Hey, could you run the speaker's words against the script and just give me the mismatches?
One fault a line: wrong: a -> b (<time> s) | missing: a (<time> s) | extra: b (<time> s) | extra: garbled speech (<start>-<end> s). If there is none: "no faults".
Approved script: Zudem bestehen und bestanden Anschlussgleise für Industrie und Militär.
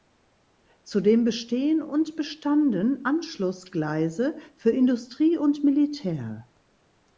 no faults